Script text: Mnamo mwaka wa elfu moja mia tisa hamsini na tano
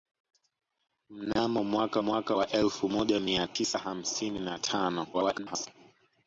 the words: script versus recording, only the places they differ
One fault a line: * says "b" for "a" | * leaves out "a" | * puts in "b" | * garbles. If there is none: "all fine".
* puts in "mwaka"
* garbles